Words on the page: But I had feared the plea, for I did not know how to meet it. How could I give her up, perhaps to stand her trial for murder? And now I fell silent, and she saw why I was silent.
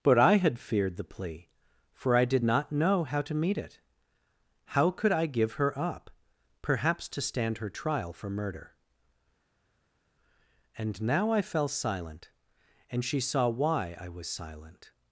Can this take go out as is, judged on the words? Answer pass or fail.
pass